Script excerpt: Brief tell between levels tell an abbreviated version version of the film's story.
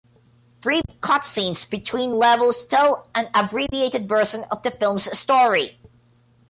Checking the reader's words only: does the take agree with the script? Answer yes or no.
no